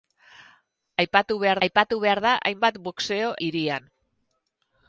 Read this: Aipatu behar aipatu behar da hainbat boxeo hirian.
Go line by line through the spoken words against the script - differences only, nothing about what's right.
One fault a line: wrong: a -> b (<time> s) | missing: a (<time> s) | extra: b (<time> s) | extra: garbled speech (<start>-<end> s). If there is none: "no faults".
no faults